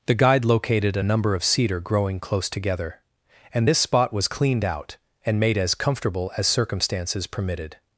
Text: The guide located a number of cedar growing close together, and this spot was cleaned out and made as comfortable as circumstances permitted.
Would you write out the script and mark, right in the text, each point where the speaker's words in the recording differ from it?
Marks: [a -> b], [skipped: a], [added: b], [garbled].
The guide located a number of cedar growing close together, and this spot was cleaned out and made as comfortable as circumstances permitted.